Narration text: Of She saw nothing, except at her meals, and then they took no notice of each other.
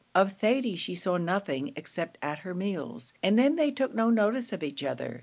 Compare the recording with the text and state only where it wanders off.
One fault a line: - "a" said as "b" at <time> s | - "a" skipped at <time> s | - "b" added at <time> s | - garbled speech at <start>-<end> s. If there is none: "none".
- "Thady" added at 0.3 s